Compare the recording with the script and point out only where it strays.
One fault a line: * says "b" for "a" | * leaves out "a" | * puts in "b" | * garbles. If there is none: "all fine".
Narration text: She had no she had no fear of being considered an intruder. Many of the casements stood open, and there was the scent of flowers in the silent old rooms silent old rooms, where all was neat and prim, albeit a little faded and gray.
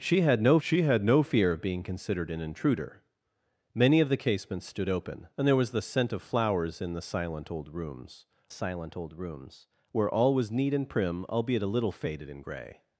all fine